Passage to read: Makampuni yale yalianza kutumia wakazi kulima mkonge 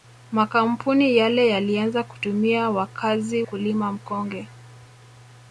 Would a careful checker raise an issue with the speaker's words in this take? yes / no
no